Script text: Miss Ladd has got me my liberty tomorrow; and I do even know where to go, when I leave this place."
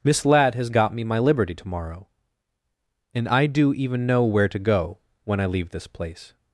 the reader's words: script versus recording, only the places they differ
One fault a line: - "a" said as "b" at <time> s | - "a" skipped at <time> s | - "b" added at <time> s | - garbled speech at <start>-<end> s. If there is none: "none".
none